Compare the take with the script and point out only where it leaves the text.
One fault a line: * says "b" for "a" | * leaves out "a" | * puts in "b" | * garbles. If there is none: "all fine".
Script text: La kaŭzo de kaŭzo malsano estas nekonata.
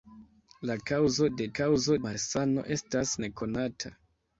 all fine